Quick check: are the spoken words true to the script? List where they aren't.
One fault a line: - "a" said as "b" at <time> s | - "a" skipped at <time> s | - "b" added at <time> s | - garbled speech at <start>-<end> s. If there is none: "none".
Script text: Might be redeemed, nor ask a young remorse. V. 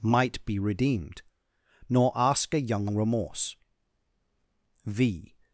none